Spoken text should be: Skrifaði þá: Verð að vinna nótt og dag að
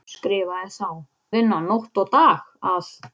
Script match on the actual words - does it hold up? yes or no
no